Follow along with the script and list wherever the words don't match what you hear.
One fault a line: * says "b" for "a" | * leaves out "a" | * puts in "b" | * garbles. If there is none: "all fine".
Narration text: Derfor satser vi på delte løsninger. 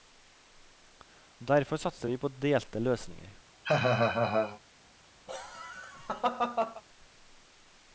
all fine